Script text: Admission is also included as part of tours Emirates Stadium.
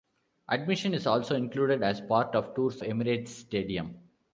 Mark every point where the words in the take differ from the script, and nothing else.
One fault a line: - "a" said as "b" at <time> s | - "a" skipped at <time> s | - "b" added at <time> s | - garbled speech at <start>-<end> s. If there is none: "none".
none